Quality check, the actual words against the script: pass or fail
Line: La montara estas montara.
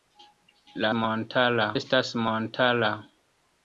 pass